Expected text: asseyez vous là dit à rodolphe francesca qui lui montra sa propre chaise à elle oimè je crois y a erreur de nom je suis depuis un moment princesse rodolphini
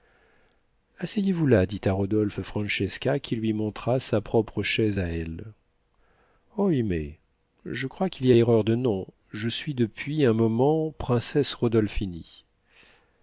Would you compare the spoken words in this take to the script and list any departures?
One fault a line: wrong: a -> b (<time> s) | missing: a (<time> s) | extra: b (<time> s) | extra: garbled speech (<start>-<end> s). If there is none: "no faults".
extra: qu'il (8.1 s)